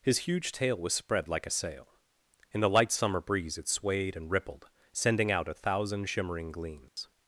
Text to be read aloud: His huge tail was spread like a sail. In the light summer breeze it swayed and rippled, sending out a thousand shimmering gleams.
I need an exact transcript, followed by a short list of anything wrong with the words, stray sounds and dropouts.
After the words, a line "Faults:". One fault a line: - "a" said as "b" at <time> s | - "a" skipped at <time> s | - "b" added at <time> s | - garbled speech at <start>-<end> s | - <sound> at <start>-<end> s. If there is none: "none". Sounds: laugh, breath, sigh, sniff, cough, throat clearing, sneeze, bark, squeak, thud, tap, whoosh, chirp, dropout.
His huge tail was spread like a sail. In the light summer breeze it swayed and rippled, sending out a thousand shimmering gleams.
Faults:
- dropout at 6.9-7.0 s